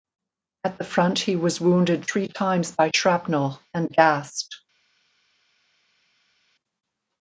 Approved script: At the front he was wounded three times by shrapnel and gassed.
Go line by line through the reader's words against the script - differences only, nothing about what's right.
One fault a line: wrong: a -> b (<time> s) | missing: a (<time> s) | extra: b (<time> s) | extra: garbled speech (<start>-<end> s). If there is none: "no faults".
no faults